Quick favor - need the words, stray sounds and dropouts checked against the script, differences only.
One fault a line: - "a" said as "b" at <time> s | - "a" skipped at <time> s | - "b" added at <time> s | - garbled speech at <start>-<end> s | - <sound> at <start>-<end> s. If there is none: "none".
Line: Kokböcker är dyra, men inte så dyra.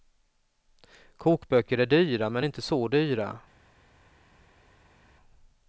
none